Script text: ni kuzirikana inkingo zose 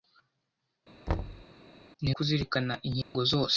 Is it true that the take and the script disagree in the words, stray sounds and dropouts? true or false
true